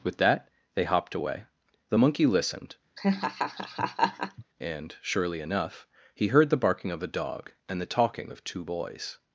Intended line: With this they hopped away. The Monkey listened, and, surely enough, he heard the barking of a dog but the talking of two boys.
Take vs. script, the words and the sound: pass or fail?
fail